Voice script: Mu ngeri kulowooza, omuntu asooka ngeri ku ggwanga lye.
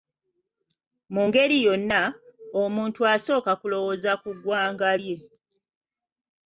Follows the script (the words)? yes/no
no